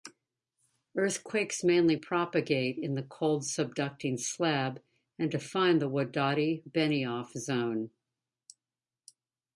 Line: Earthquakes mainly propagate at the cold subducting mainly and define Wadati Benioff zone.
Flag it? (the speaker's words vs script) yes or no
yes